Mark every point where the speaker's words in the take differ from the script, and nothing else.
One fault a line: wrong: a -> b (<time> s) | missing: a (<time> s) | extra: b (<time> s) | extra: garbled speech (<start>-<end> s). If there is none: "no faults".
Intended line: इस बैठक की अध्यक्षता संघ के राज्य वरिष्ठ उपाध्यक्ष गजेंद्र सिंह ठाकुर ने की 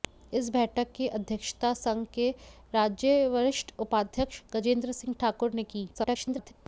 extra: garbled speech (5.9-6.5 s)